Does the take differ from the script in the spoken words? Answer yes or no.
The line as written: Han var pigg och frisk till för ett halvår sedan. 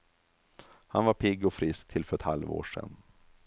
no